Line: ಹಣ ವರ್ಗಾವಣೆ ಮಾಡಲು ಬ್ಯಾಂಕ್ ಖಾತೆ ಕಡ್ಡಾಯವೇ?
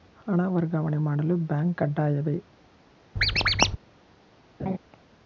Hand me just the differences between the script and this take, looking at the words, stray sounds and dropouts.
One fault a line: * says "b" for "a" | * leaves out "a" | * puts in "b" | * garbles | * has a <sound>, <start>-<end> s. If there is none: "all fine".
* leaves out "ಖಾತೆ"
* has a squeak, 3.2-3.8 s
* has a laugh, 4.6-4.8 s